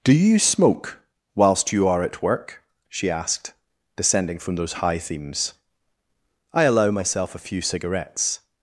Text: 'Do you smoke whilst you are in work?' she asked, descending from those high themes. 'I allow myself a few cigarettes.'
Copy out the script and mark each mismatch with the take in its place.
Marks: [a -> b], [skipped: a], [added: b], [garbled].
'Do you smoke whilst you are [in -> at] work?' she asked, descending from those high themes. 'I allow myself a few cigarettes.'